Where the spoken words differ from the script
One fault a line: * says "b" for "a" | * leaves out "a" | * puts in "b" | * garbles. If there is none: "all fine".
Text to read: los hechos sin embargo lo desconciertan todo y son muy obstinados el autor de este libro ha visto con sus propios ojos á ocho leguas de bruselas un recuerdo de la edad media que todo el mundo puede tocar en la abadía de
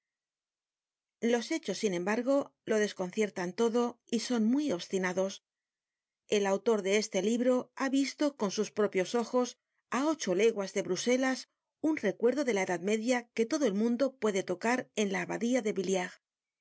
all fine